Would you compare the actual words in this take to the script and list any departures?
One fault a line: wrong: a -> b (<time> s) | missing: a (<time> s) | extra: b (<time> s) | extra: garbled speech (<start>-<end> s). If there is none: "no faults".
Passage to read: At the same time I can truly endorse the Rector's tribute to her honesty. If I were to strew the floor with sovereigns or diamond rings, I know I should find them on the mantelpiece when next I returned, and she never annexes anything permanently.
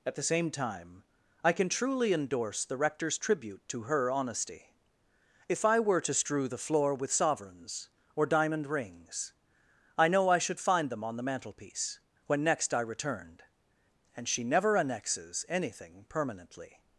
no faults